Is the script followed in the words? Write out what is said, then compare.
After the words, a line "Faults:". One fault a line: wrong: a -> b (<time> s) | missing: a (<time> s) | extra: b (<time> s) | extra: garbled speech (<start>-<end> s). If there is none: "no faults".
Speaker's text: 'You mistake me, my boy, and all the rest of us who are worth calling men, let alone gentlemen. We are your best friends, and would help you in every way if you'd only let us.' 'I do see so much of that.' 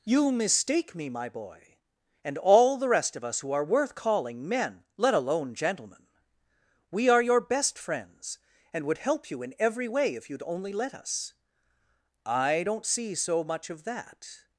'You mistake me, my boy, and all the rest of us who are worth calling men, let alone gentlemen. We are your best friends, and would help you in every way if you'd only let us.' 'I don't see so much of that.'
Faults:
wrong: do -> don't (12.6 s)